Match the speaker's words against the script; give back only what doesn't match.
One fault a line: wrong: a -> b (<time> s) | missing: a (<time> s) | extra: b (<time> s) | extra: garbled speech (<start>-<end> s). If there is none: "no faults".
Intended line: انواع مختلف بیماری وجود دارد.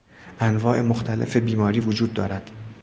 no faults